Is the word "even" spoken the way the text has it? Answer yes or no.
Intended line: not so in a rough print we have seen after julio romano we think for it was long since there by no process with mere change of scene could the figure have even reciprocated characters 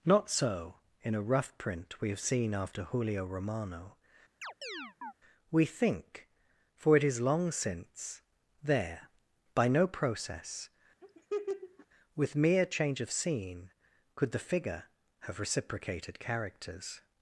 no